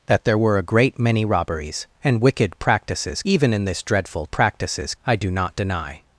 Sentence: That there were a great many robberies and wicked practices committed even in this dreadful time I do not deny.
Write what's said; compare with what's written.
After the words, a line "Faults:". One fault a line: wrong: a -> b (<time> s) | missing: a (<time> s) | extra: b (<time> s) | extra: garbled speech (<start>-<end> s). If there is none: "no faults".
That there were a great many robberies and wicked practices even in this dreadful practices I do not deny.
Faults:
missing: committed (3.2 s)
wrong: time -> practices (4.3 s)